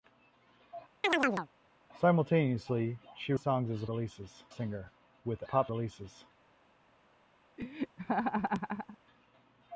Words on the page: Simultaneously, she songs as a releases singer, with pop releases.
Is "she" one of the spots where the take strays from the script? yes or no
no